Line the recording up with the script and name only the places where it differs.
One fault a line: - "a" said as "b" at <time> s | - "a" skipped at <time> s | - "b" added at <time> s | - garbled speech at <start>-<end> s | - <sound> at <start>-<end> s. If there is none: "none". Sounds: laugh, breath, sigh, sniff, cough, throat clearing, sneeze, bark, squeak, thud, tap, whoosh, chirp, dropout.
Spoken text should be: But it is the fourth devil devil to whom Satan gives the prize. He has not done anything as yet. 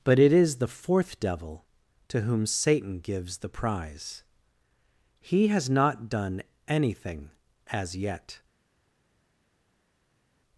- "devil" skipped at 1.6 s